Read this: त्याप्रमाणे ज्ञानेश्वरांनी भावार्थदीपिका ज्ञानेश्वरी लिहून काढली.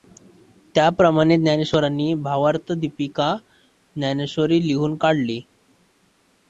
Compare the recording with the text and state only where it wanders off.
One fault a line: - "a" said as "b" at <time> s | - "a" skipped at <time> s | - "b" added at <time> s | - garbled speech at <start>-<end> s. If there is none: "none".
none